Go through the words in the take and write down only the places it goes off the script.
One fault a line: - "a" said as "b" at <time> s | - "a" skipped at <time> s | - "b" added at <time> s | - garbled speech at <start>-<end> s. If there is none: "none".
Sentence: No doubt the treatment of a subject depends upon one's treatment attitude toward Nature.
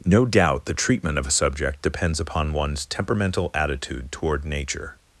- "treatment" said as "temperamental" at 2.9 s